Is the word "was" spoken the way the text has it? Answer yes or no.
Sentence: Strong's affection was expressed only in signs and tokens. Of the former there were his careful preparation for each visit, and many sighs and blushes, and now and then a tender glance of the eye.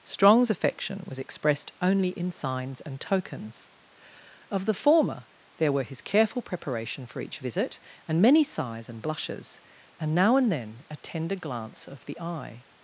yes